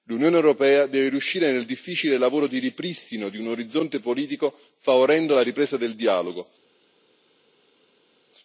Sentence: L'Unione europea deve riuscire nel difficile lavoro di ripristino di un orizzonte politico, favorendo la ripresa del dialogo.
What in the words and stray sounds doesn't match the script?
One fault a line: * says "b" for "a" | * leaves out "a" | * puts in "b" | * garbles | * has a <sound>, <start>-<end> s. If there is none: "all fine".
all fine